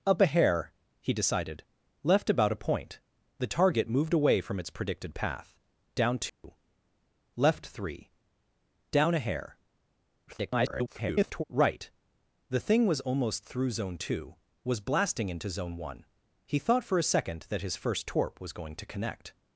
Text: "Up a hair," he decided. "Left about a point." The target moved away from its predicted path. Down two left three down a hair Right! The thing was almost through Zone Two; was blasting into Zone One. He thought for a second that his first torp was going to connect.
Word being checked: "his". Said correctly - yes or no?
yes